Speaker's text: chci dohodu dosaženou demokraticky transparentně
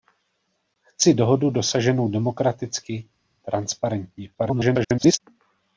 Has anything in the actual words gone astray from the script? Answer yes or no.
yes